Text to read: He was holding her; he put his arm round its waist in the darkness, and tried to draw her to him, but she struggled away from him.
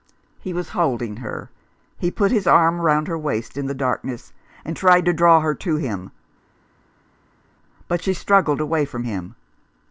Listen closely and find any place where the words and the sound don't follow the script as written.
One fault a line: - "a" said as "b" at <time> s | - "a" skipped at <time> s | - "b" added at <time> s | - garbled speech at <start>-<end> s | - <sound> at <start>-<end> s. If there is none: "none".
- "its" said as "her" at 3.1 s